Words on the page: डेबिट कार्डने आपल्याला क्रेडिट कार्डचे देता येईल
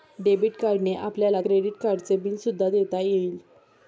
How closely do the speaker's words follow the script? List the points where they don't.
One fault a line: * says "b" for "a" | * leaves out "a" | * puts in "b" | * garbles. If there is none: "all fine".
* puts in "बिल सुद्धा"